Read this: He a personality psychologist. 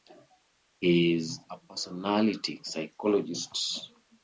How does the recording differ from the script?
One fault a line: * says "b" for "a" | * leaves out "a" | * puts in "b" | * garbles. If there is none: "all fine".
* puts in "is"